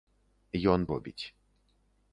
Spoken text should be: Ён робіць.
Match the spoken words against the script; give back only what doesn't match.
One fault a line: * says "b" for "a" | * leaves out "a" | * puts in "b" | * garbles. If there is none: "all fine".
all fine